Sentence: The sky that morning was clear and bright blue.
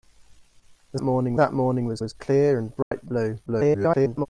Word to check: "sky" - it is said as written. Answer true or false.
false